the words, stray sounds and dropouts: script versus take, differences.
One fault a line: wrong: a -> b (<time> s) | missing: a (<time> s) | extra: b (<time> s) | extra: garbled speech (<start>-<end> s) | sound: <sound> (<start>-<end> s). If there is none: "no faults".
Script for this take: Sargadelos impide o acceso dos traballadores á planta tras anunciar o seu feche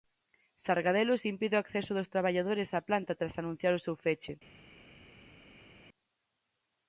no faults